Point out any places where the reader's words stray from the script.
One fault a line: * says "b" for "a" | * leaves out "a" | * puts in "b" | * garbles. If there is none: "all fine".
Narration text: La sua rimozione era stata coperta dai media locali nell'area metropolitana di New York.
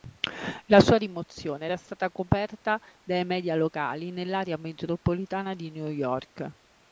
all fine